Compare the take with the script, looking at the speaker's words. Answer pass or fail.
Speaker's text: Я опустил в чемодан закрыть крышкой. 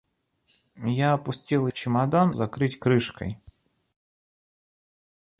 pass